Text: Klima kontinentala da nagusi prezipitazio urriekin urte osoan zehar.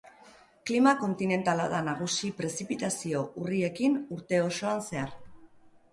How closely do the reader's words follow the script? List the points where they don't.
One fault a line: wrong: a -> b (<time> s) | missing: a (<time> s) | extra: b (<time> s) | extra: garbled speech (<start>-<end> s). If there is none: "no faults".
no faults